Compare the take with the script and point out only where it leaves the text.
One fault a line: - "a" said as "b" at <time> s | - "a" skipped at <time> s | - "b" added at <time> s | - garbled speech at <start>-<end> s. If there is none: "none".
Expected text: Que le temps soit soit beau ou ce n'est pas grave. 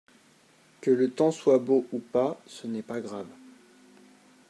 - "soit" skipped at 1.6 s
- "pas" added at 2.0 s